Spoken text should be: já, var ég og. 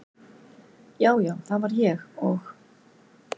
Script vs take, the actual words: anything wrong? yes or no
yes